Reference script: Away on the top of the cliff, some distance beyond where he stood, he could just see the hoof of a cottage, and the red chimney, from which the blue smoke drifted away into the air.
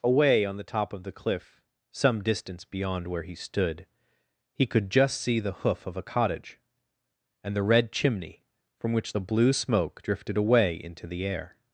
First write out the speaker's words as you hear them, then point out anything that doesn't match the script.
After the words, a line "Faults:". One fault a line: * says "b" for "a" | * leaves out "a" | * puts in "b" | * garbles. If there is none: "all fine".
Away on the top of the cliff, some distance beyond where he stood, he could just see the hoof of a cottage, and the red chimney, from which the blue smoke drifted away into the air.
Faults:
all fine